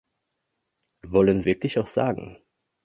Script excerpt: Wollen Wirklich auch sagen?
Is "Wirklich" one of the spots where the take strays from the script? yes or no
no